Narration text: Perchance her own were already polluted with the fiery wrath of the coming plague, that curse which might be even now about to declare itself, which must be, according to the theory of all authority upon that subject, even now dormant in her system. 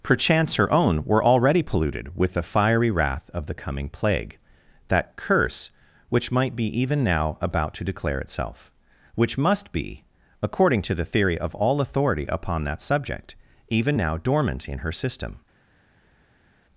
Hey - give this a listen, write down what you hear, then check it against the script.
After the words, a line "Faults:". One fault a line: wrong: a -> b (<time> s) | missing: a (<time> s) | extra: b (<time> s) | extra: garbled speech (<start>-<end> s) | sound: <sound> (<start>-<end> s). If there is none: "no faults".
Perchance her own were already polluted with the fiery wrath of the coming plague, that curse which might be even now about to declare itself, which must be, according to the theory of all authority upon that subject, even now dormant in her system.
Faults:
no faults